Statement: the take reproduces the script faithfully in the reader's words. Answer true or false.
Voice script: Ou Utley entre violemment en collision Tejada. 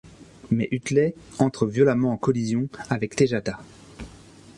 false